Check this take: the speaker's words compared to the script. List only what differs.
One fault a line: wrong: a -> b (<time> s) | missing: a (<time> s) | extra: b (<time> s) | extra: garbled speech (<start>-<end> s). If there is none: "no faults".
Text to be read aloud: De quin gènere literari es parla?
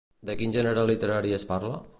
no faults